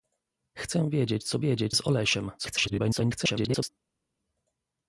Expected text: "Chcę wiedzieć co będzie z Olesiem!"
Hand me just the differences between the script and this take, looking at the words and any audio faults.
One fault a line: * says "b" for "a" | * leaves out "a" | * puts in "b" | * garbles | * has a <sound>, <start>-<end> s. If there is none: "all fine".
* says "wiedzieć" for "będzie"
* garbles